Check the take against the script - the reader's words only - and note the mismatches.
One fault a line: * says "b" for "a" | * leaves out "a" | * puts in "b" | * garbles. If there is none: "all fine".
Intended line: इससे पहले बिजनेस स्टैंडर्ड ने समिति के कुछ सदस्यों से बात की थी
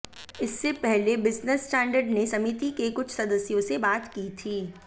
all fine